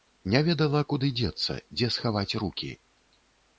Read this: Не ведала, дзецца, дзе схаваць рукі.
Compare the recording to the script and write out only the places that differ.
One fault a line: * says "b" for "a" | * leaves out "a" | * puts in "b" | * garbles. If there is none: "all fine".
* puts in "куды"